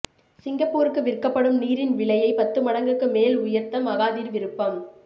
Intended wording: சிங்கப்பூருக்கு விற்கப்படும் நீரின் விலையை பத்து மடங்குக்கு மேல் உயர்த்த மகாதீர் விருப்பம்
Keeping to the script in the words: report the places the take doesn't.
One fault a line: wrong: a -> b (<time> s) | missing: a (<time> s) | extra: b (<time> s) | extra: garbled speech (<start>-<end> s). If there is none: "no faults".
no faults